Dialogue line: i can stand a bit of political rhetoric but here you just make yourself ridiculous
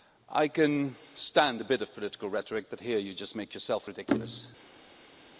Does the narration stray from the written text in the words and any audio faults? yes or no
no